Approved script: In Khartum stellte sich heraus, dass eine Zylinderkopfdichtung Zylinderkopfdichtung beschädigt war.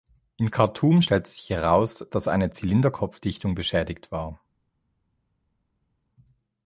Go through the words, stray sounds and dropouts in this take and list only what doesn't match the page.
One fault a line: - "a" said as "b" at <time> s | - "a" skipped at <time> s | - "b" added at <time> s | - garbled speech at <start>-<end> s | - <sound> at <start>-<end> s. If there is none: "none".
- "Zylinderkopfdichtung" skipped at 3.5 s